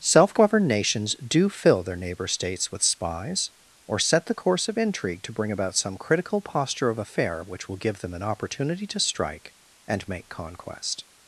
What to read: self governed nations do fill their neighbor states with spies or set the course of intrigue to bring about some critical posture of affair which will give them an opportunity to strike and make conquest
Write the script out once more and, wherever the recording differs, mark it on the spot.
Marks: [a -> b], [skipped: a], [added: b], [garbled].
self governed nations do fill their neighbor states with spies or set the course of intrigue to bring about some critical posture of affair which will give them an opportunity to strike and make conquest